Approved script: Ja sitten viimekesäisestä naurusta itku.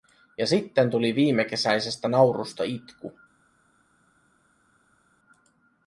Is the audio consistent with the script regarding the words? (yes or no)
no